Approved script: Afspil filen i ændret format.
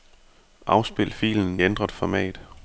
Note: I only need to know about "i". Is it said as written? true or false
false